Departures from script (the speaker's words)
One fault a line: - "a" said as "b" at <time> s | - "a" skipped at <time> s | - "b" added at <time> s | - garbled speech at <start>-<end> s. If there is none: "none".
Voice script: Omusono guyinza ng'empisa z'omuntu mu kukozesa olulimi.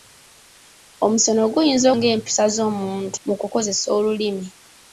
none